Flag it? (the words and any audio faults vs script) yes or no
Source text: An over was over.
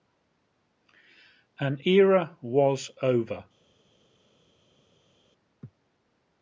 yes